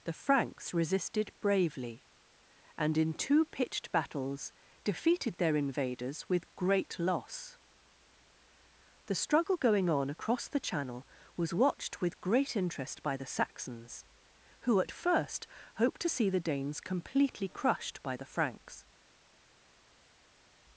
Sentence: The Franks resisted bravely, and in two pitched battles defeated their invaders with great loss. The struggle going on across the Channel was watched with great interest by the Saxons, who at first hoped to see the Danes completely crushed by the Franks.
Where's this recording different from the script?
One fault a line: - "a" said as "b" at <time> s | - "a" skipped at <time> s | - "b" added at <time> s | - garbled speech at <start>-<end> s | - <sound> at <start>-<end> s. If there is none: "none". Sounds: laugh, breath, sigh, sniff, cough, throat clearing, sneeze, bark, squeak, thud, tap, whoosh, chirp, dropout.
none